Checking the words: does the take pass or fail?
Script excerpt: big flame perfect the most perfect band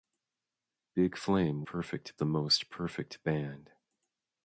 pass